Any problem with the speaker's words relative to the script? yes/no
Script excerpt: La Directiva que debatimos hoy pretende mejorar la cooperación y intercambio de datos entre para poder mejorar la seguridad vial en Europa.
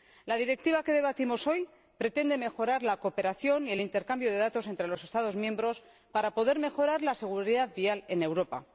yes